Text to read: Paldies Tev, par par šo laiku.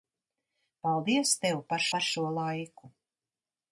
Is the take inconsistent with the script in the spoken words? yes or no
no